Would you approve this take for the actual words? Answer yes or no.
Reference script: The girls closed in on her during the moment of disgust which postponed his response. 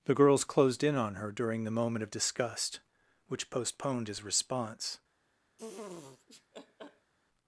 yes